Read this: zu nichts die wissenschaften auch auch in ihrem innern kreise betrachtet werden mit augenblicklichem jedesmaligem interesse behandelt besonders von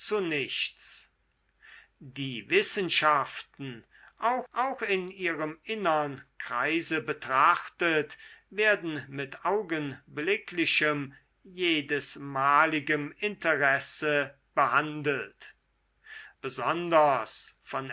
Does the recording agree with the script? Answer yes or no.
yes